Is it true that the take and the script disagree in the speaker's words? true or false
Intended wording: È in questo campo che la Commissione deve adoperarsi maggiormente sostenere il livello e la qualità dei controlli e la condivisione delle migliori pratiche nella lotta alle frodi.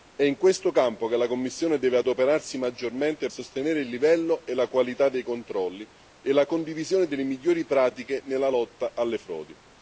false